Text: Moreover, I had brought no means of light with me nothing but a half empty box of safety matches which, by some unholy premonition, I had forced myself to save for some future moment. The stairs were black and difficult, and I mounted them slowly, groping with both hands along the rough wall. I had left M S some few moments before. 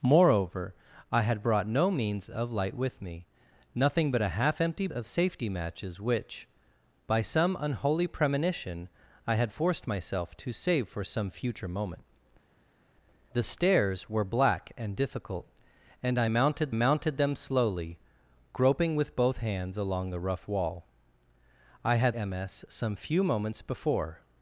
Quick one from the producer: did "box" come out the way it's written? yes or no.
no